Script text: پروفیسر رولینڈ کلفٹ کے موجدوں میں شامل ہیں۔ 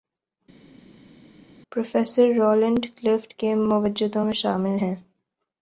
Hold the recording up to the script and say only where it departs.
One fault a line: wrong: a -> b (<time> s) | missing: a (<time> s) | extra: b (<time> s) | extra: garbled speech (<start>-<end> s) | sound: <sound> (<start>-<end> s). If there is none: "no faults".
no faults